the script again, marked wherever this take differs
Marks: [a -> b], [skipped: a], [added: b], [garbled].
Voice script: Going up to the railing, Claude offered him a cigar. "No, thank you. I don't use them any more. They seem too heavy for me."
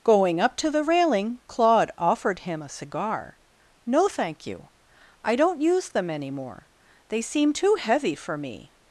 Going up to the railing, Claude offered him a cigar. "No, thank you. I don't use them any more. They seem too heavy for me."